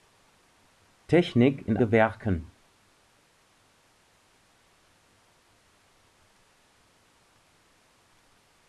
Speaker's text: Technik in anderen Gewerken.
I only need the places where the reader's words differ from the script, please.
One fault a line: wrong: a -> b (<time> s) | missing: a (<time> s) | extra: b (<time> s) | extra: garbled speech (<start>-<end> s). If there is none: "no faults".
missing: anderen (1.8 s)